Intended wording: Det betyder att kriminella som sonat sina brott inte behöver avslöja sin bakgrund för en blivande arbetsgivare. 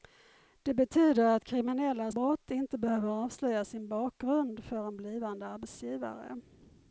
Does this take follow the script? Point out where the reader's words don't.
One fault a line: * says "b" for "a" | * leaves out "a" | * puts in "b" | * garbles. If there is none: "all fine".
* leaves out "som sonat sina"